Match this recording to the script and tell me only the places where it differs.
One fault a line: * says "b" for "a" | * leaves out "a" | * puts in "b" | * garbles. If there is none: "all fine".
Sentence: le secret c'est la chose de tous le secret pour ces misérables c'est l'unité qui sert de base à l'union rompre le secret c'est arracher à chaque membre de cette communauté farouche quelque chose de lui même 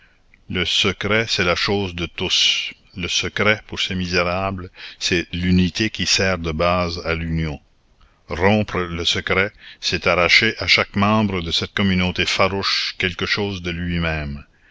all fine